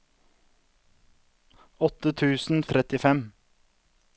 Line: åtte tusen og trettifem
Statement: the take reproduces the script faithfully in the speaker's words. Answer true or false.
true